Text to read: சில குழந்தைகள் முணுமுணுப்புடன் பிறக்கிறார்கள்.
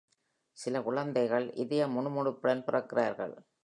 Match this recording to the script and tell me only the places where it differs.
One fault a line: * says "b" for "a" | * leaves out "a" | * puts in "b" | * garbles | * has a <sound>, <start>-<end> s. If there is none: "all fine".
* puts in "இதய"